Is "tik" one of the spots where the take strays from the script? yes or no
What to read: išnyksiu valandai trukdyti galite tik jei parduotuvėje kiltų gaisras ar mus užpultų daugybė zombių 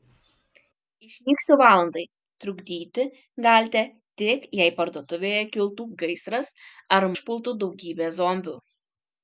no